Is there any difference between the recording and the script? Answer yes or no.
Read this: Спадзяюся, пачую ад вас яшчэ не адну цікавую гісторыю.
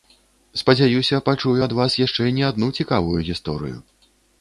no